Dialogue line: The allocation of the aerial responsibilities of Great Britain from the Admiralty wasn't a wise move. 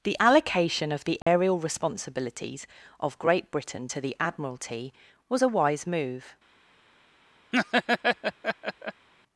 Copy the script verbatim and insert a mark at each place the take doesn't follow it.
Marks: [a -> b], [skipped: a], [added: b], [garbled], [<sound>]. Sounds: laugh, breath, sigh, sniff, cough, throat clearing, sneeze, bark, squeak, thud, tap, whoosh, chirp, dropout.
The allocation of the aerial [dropout] responsibilities of Great Britain [from -> to] the Admiralty [wasn't -> was] a wise move. [laugh]